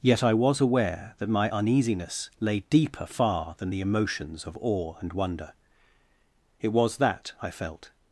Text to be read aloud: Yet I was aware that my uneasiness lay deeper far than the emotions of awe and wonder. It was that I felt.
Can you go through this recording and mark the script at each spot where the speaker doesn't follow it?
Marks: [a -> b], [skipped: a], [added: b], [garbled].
Yet I was aware that my uneasiness lay deeper far than the emotions of awe and wonder. It was that I felt.